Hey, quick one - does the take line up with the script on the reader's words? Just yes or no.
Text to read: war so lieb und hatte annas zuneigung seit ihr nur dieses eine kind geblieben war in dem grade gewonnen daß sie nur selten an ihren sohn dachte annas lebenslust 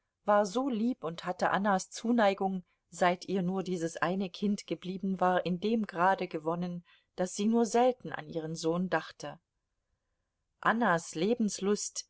yes